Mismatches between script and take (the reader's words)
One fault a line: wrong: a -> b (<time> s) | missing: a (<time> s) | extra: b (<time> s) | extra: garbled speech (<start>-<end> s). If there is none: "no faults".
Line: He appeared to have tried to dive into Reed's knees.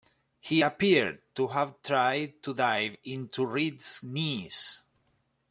no faults